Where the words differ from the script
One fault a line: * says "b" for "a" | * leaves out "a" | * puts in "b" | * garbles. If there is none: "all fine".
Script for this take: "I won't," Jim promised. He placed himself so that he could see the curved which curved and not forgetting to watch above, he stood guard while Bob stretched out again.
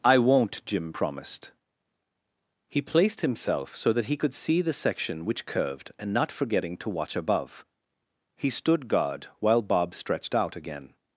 * says "section" for "curved"